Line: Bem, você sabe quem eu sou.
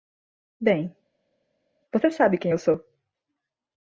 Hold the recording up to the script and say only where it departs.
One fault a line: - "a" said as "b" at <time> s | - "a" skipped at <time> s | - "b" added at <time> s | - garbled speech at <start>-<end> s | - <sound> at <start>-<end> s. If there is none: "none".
none